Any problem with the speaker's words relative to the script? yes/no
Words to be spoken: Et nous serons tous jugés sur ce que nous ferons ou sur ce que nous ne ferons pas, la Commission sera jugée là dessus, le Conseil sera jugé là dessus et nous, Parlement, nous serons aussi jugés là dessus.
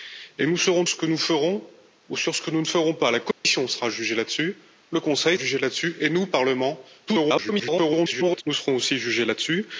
yes